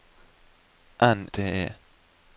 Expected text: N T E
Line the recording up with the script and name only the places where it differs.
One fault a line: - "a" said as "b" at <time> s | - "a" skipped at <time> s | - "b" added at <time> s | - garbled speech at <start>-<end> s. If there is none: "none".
none